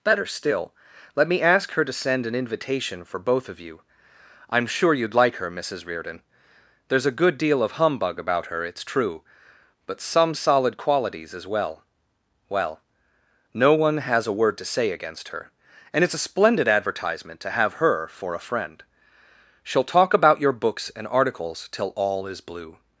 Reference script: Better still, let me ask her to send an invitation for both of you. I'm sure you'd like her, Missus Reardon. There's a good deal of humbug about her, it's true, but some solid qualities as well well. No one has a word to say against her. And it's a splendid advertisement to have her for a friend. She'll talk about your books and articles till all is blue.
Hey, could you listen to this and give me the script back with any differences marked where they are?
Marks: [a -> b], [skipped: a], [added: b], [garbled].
Better still, let me ask her to send an invitation for both of you. I'm sure you'd like her, Missus Reardon. There's a good deal of humbug about her, it's true, but some solid qualities as well well. No one has a word to say against her. And it's a splendid advertisement to have her for a friend. She'll talk about your books and articles till all is blue.